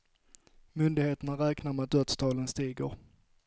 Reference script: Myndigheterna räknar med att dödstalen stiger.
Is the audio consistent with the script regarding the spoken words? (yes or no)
yes